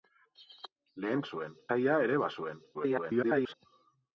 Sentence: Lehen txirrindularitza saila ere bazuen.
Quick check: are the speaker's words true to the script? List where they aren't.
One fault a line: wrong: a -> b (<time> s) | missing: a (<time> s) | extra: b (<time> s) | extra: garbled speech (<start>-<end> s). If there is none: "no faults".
wrong: txirrindularitza -> bazuen (1.2 s)
extra: garbled speech (2.7-3.5 s)